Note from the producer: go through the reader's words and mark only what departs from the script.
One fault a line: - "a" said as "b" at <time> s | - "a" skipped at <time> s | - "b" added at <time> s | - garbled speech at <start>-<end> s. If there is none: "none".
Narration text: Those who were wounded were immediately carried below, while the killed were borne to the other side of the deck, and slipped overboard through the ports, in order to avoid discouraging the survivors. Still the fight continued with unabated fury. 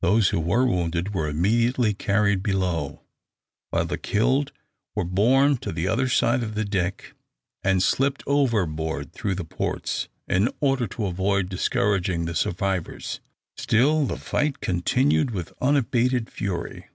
none